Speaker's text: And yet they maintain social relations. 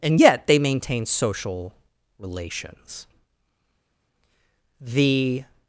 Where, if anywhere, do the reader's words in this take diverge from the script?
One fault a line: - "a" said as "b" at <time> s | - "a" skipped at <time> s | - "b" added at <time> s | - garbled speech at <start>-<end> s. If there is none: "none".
- "The" added at 4.8 s